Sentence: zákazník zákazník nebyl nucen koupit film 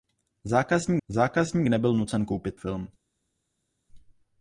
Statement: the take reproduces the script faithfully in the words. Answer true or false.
true